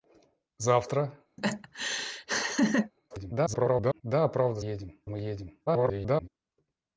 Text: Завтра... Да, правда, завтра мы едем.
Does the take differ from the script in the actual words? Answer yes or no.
yes